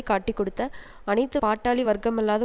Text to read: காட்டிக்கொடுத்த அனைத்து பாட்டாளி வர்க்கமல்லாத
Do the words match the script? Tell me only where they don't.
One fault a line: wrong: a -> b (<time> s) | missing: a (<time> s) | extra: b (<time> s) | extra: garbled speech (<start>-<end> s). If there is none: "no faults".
no faults